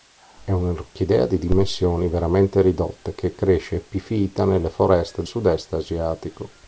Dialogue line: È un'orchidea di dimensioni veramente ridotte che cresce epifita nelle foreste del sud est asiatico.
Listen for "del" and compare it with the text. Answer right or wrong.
wrong